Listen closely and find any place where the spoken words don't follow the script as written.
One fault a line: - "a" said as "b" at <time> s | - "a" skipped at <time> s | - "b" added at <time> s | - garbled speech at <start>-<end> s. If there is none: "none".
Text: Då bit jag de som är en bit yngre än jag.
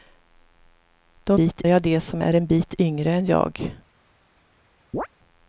none